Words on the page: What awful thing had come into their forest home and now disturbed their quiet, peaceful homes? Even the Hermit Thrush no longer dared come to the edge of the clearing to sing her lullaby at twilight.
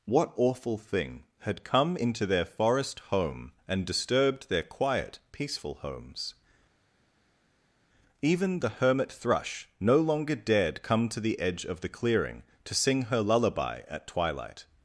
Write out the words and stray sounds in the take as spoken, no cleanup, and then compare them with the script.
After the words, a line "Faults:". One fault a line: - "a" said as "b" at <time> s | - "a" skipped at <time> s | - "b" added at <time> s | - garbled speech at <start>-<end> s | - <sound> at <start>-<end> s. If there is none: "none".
What awful thing had come into their forest home and disturbed their quiet, peaceful homes? Even the Hermit Thrush no longer dared come to the edge of the clearing to sing her lullaby at twilight.
Faults:
- "now" skipped at 3.8 s